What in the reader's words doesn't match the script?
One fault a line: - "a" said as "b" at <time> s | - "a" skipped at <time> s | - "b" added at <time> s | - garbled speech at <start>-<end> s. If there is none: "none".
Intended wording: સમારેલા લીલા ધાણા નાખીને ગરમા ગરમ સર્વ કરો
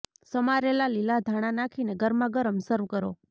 none